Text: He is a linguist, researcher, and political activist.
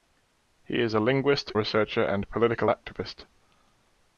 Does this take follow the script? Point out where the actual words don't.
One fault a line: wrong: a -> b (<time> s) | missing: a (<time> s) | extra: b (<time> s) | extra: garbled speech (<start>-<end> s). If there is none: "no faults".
no faults